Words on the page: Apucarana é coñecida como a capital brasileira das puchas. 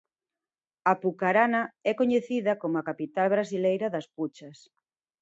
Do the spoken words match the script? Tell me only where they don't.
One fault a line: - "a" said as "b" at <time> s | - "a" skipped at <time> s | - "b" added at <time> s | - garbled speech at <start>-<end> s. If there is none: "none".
none